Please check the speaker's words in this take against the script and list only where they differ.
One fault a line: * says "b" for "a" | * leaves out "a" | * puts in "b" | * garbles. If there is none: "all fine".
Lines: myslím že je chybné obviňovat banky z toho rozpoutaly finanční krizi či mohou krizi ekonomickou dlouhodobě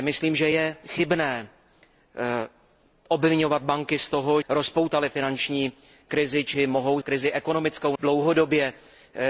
all fine